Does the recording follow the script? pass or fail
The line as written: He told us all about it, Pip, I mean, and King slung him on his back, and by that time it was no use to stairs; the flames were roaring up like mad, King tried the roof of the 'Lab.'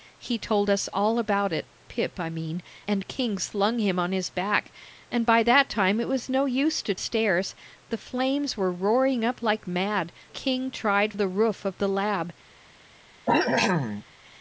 pass